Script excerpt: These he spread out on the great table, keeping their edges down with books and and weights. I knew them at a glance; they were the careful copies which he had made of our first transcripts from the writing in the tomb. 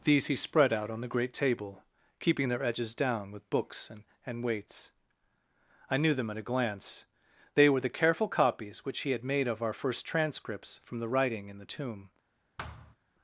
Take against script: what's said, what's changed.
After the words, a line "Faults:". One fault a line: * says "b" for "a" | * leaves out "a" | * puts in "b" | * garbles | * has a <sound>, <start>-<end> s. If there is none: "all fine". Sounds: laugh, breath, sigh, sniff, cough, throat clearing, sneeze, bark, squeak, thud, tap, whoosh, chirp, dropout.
These he spread out on the great table, keeping their edges down with books and and weights. I knew them at a glance; they were the careful copies which he had made of our first transcripts from the writing in the tomb.
Faults:
* has a thud, 12.6-13.0 s